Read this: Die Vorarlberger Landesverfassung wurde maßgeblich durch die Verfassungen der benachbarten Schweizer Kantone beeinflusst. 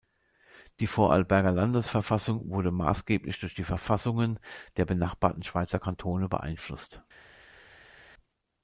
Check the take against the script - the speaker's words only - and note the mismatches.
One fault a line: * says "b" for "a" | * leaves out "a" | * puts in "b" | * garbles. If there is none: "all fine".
all fine